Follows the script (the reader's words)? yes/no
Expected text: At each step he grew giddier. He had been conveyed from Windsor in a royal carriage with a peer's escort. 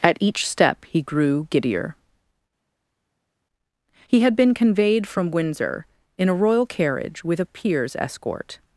yes